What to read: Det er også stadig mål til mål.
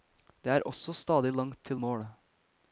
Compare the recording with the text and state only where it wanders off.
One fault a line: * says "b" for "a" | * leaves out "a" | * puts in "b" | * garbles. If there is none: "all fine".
* says "langt" for "mål"